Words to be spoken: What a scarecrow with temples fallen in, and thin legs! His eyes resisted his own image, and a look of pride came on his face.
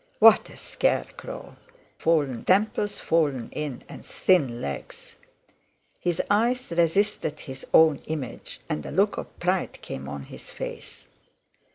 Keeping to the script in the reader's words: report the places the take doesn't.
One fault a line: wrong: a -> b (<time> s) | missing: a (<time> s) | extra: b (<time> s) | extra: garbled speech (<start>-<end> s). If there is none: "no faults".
wrong: with -> fallen (2.0 s)